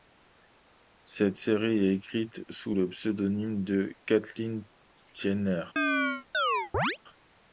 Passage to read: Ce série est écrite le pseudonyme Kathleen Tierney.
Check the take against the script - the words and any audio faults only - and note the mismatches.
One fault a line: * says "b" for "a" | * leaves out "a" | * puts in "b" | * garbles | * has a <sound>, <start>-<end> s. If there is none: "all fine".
* says "Cette" for "Ce"
* puts in "sous"
* puts in "de"
* has a chirp, 5.8-7.0 s